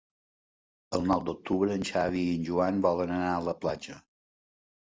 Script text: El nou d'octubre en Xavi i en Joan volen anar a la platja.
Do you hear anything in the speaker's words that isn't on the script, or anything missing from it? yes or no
no